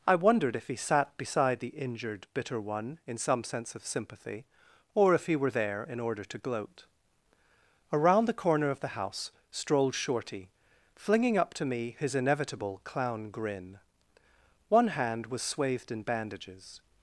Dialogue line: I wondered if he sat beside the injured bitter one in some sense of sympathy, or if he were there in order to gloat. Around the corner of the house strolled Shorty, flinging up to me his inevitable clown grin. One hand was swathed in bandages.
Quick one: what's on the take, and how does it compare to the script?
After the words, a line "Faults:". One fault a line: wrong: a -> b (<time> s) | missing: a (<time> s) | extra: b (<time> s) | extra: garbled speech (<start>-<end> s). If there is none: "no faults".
I wondered if he sat beside the injured bitter one in some sense of sympathy, or if he were there in order to gloat. Around the corner of the house strolled Shorty, flinging up to me his inevitable clown grin. One hand was swathed in bandages.
Faults:
no faults